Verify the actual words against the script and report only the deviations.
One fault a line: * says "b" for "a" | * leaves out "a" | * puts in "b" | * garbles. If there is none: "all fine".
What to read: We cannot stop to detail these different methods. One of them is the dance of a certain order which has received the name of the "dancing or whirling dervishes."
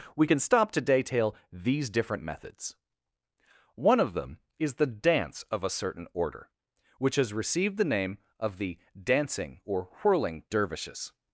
* says "can" for "cannot"